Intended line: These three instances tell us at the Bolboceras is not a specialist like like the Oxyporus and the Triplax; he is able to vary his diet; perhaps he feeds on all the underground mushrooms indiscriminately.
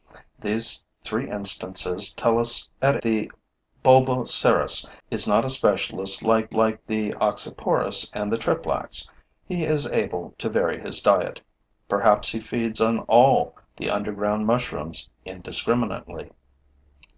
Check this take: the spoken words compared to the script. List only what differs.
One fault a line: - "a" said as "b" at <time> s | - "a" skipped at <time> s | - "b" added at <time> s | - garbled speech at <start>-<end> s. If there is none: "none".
none